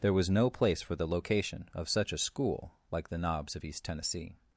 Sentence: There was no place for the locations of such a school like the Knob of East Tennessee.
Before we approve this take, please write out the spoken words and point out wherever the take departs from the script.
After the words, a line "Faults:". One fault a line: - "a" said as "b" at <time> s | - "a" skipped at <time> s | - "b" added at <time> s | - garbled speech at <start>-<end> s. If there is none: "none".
There was no place for the location of such a school like the Knobs of East Tennessee.
Faults:
- "locations" said as "location" at 1.1 s
- "Knob" said as "Knobs" at 3.2 s